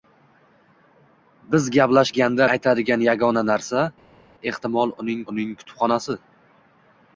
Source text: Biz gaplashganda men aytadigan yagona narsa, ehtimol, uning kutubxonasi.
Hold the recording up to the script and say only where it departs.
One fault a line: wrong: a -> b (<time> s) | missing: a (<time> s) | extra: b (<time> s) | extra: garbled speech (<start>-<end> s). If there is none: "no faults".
missing: men (2.5 s)
extra: uning (5.3 s)